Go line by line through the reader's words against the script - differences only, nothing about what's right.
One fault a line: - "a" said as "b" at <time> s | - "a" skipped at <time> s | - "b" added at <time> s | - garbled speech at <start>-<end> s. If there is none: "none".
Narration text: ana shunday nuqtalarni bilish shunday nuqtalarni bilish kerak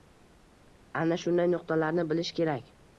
- "shunday nuqtalarni bilish" skipped at 2.4 s